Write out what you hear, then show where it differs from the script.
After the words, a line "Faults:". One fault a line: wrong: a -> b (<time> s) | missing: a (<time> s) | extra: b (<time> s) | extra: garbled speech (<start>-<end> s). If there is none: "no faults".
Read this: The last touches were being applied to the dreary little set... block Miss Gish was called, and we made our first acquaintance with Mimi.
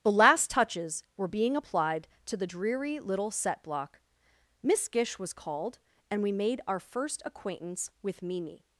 The last touches were being applied to the dreary little set... block Miss Gish was called, and we made our first acquaintance with Mimi.
Faults:
no faults